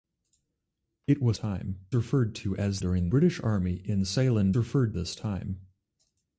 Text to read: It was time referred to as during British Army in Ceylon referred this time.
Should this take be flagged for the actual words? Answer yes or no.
no